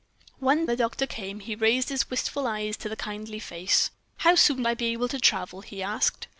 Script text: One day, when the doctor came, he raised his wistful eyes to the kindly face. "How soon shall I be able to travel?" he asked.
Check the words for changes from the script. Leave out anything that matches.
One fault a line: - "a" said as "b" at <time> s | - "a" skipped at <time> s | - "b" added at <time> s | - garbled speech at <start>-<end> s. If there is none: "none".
- "day when" skipped at 0.7 s
- "shall" skipped at 4.6 s